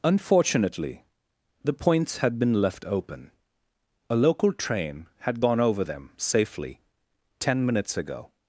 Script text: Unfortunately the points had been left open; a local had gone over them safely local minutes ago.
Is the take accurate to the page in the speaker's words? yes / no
no